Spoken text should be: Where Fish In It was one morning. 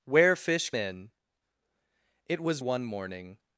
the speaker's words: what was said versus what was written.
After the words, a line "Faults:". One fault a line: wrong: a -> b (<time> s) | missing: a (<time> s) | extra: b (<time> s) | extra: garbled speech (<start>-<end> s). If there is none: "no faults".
Where Fish In It was one morning.
Faults:
no faults